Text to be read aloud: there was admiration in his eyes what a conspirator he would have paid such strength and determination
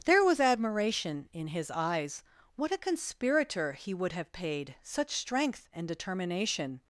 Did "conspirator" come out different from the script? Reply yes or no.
no